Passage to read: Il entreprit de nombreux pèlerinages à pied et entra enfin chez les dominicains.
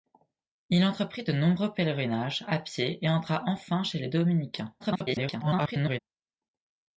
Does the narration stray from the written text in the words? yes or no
yes